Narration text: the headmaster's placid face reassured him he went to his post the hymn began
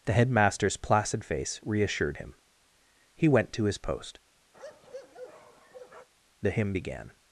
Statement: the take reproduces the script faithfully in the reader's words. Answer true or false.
true